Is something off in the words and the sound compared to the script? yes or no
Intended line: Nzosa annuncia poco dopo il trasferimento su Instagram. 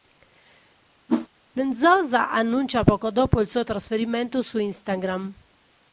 yes